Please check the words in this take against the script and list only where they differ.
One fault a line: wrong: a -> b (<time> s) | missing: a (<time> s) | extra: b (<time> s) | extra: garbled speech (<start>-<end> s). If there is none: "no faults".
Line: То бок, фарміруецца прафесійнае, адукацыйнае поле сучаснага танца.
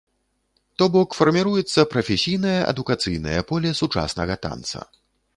no faults